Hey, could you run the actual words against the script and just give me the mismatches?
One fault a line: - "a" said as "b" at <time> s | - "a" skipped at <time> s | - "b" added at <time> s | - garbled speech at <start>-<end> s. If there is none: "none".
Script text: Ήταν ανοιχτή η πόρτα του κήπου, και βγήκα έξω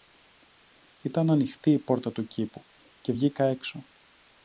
none